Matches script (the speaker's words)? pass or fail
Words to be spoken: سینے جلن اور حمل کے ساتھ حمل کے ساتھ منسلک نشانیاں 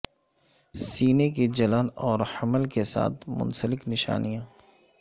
fail